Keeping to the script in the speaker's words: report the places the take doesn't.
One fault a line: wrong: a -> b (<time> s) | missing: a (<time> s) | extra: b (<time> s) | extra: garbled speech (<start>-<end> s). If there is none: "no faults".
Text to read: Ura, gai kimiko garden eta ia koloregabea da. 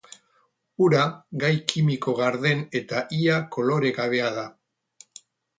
no faults